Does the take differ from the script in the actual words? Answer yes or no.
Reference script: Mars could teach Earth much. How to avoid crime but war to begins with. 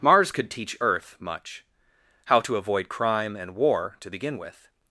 yes